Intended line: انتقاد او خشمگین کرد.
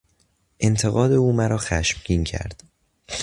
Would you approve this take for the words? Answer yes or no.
no